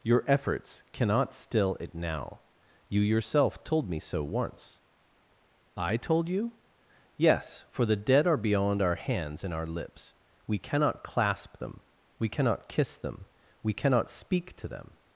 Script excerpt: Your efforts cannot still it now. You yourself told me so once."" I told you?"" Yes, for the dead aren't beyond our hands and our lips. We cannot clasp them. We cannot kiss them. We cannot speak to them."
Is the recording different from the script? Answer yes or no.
yes